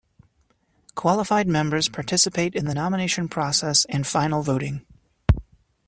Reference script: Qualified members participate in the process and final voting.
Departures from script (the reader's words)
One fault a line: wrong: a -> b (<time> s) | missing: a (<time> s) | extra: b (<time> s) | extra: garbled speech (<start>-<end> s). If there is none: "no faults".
extra: nomination (2.7 s)